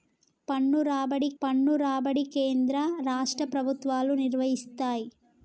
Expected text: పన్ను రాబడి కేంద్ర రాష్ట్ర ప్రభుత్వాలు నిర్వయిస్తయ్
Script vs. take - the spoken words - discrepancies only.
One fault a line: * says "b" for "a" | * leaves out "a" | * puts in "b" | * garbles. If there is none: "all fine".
* puts in "పన్ను రాబడి"